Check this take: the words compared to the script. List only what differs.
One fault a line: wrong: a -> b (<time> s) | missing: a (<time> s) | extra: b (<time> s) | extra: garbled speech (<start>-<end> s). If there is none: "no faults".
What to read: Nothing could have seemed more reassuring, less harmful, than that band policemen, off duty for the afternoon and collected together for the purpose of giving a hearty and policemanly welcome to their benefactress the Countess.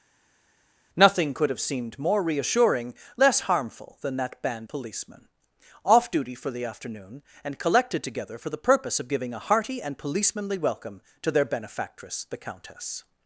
no faults